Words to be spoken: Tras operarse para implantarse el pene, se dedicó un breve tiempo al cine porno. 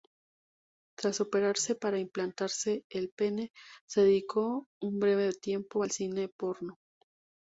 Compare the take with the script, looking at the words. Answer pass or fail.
pass